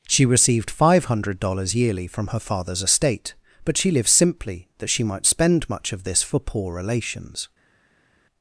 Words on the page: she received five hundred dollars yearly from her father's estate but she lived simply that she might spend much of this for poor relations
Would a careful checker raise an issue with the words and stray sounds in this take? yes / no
no